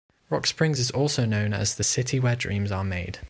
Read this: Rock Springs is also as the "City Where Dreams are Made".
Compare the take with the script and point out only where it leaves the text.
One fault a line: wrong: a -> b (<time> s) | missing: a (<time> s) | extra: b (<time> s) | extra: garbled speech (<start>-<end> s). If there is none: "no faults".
extra: known (1.3 s)